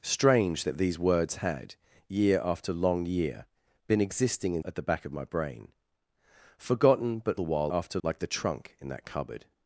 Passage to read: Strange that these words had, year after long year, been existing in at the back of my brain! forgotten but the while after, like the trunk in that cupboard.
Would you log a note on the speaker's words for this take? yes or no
no